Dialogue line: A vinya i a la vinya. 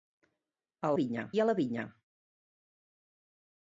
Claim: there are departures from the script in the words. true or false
false